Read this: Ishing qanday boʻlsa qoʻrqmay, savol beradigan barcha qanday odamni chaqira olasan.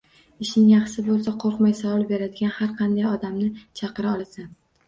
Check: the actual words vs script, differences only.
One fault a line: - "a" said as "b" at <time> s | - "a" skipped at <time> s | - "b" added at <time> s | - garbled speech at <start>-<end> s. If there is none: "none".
- "qanday" said as "yaxshi" at 0.7 s
- "barcha" said as "har" at 2.6 s